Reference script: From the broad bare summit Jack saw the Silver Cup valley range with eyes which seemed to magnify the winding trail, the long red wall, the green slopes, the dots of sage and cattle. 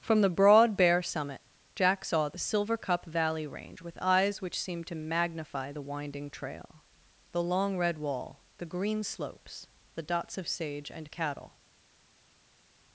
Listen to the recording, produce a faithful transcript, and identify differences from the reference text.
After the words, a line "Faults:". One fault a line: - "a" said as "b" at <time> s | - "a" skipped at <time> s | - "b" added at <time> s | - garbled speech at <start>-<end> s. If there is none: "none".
From the broad bare summit Jack saw the Silver Cup valley range with eyes which seemed to magnify the winding trail, the long red wall, the green slopes, the dots of sage and cattle.
Faults:
none